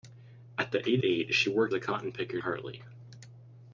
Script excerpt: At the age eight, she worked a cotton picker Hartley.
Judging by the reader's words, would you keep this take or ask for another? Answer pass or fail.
pass